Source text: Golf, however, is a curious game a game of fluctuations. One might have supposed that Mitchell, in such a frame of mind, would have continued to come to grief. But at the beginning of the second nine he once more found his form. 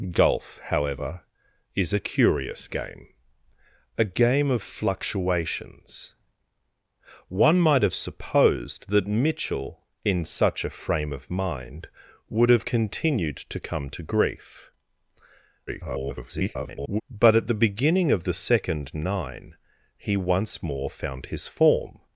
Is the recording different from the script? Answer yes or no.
yes